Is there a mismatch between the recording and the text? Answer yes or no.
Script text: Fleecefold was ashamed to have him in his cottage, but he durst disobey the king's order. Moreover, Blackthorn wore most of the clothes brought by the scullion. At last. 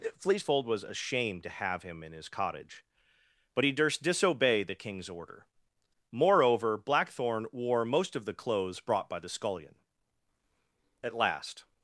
no